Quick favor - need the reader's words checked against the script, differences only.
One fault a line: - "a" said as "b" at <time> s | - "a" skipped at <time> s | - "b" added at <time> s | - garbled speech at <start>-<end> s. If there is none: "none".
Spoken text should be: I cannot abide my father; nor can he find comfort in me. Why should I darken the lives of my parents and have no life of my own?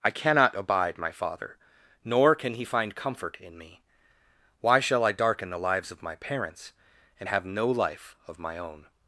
- "should" said as "shall" at 4.8 s